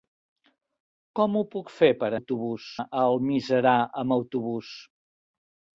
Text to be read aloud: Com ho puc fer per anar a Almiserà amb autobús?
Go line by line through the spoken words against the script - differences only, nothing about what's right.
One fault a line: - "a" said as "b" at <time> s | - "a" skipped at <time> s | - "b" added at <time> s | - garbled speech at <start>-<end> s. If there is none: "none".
- "anar" said as "autobús" at 2.2 s